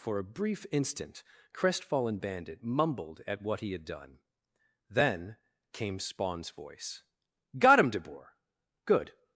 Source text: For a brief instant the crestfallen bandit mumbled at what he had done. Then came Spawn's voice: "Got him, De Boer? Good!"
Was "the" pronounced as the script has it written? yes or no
no